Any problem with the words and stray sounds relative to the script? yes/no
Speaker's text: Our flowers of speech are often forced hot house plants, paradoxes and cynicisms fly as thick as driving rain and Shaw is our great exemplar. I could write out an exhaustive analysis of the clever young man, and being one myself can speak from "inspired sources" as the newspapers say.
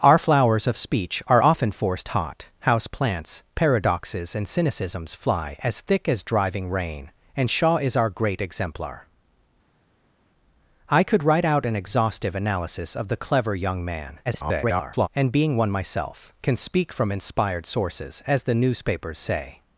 yes